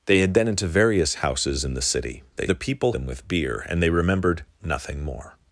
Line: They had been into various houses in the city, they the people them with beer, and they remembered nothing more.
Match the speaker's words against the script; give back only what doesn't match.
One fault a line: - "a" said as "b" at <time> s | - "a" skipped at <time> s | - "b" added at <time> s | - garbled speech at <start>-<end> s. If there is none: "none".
none